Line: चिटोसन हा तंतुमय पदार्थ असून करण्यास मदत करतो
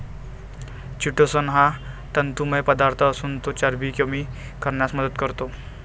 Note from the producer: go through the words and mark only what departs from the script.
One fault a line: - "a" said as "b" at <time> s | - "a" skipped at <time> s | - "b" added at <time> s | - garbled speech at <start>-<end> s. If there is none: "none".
- "तो चरबी कमी" added at 3.4 s